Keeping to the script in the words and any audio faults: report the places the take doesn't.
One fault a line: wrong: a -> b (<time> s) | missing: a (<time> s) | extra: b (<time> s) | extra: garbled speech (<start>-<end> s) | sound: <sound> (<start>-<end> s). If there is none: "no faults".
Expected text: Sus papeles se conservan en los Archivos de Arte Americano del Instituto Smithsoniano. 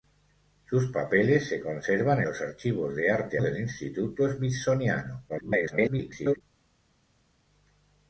missing: en (2.2 s)
missing: Americano (3.4 s)
extra: garbled speech (5.3-6.4 s)